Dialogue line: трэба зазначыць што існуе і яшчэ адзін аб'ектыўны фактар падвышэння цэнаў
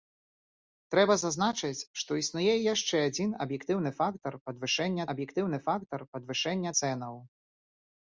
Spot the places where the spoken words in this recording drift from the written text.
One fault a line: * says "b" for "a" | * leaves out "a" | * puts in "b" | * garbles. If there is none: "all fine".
* puts in "аб'ектыўны фактар падвышэння"